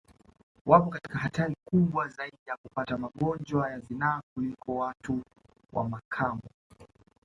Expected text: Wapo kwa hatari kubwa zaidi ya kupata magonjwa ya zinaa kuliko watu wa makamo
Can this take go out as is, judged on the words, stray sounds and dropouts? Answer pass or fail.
fail